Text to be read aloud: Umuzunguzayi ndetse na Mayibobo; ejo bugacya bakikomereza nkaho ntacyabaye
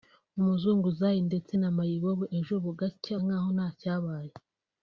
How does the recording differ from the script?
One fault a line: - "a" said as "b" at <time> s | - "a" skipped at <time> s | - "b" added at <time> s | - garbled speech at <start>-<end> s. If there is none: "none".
- "bakikomereza" skipped at 3.1 s